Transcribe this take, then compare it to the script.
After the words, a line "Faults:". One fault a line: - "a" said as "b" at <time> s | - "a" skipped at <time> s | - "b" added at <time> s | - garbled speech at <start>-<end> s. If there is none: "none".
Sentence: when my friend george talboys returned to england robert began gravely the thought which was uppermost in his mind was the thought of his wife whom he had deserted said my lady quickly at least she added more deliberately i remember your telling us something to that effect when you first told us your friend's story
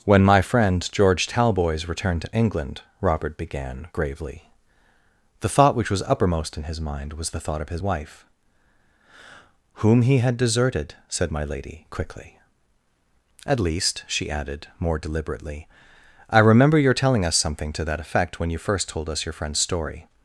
when my friend george talboys returned to england robert began gravely the thought which was uppermost in his mind was the thought of his wife whom he had deserted said my lady quickly at least she added more deliberately i remember your telling us something to that effect when you first told us your friend's story
Faults:
none